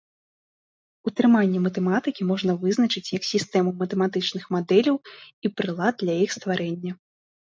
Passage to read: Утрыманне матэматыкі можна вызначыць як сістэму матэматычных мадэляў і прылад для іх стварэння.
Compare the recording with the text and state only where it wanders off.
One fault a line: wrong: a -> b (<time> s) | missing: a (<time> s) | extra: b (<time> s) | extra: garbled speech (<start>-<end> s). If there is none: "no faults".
no faults